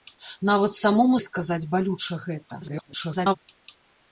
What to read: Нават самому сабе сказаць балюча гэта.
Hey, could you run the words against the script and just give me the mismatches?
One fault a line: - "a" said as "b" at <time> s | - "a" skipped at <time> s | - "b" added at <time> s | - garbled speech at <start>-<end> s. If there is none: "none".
- "сабе" skipped at 1.2 s
- garbled speech at 2.6-3.4 s